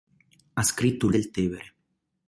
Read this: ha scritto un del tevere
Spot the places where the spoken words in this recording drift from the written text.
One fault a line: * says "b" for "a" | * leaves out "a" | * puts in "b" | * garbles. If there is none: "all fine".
all fine